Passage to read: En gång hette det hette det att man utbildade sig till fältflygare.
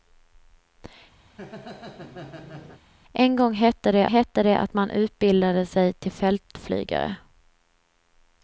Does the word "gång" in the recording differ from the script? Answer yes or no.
no